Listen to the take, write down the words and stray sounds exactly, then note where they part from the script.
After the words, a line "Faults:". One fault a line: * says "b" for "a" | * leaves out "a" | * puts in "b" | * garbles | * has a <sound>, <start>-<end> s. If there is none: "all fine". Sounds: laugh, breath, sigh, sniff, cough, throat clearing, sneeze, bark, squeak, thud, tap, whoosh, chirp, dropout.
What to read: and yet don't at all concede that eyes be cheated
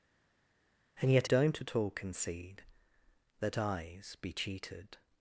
and yet don't at all concede that eyes be cheated
Faults:
all fine